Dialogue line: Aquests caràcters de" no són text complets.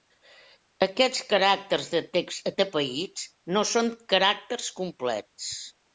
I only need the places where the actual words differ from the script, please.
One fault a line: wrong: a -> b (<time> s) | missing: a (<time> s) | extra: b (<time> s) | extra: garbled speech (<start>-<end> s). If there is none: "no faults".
extra: text atapeïts (2.2 s)
wrong: text -> caràcters (4.1 s)